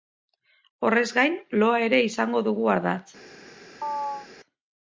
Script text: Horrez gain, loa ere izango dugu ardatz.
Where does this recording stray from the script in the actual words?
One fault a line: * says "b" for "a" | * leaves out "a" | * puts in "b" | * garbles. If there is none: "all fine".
all fine